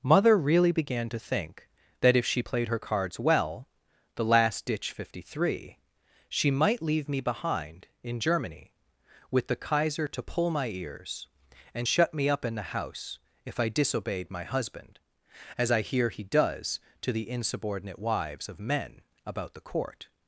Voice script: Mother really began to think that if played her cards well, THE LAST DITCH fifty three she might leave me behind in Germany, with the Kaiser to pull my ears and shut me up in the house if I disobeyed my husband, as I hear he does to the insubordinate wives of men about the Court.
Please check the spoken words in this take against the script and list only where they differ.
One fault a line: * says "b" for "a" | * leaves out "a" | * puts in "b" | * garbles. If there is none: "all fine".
* puts in "she"